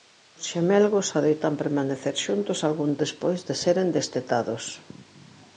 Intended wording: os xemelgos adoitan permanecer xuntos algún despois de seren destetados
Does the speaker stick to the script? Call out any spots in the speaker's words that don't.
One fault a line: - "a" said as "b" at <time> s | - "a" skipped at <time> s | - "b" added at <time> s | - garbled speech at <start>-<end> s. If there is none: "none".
none